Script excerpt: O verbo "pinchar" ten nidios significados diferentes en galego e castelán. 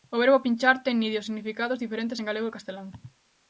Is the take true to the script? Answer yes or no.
yes